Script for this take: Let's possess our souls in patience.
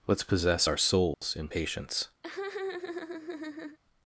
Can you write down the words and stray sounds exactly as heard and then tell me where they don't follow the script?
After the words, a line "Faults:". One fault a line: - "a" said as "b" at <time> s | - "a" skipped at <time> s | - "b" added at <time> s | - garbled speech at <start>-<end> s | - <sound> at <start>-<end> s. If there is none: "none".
Let's possess our souls in patience.
Faults:
- dropout at 1.1-1.2 s
- laugh at 2.2-3.8 s